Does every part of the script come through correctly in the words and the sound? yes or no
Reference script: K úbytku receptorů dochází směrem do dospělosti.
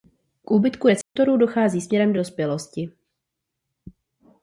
no